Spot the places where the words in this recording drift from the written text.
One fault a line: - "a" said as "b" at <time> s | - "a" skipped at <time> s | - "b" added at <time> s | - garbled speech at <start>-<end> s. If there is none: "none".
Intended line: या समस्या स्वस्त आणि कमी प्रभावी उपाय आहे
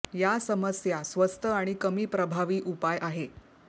none